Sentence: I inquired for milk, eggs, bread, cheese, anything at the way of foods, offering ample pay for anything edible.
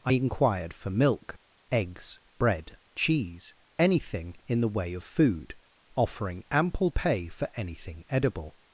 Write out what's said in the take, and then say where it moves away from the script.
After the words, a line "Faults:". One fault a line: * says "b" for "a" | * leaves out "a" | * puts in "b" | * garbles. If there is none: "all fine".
I inquired for milk, eggs, bread, cheese, anything in the way of food, offering ample pay for anything edible.
Faults:
* says "in" for "at"
* says "food" for "foods"